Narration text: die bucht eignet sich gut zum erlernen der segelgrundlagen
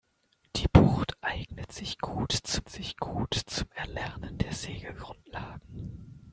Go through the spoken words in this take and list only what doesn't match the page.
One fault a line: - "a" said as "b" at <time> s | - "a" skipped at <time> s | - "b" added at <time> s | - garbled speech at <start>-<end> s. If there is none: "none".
- "sich gut zum" added at 2.7 s